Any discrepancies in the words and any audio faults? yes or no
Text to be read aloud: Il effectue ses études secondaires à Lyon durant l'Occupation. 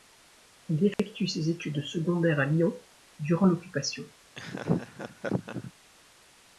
yes